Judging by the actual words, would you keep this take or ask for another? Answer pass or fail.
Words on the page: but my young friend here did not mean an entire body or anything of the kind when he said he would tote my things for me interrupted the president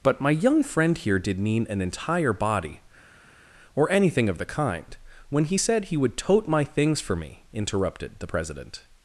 fail